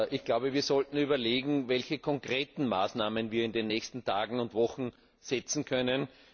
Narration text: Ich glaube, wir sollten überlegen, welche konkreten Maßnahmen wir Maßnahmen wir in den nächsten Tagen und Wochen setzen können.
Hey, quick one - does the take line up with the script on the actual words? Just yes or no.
no